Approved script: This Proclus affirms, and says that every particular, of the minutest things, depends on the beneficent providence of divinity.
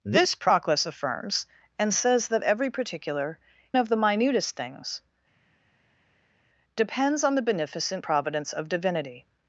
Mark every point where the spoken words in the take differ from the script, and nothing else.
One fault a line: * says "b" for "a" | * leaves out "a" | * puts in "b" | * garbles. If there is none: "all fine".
all fine